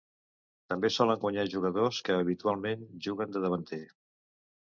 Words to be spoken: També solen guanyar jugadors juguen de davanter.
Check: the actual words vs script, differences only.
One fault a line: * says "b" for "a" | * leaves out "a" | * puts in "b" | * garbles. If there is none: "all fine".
* puts in "que habitualment"